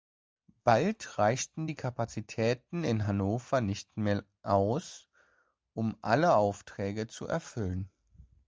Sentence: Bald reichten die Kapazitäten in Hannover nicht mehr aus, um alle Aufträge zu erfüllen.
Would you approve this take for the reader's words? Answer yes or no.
yes